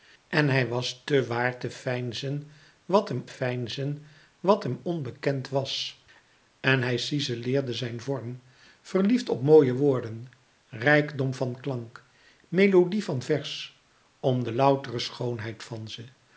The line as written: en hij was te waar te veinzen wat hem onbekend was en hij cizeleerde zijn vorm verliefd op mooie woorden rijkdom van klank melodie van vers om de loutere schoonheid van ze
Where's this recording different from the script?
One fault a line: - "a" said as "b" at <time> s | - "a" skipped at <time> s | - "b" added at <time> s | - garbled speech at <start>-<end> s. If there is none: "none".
- "veinzen wat hem" added at 3.2 s